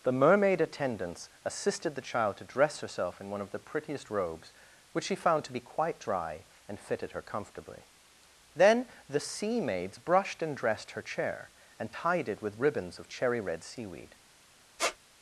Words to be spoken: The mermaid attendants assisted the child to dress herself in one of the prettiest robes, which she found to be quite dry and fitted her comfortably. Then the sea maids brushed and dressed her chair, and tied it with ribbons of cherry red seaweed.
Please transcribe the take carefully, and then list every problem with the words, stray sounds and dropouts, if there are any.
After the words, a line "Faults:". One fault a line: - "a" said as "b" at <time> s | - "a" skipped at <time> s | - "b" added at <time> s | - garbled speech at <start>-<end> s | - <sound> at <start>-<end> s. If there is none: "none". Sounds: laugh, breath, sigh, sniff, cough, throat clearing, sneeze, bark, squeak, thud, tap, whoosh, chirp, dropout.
The mermaid attendants assisted the child to dress herself in one of the prettiest robes, which she found to be quite dry and fitted her comfortably. Then the sea maids brushed and dressed her chair, and tied it with ribbons of cherry red seaweed.
Faults:
- squeak at 14.8-15.0 s